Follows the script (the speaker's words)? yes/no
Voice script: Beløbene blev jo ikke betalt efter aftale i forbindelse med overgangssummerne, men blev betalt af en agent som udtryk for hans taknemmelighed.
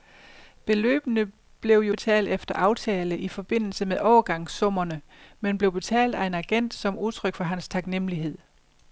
no